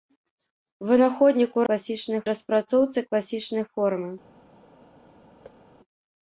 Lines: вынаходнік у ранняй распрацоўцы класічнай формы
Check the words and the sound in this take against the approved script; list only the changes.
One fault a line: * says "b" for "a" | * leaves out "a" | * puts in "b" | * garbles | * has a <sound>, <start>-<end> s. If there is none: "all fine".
* says "класічнай" for "ранняй"
* has a thud, 5.4-5.6 s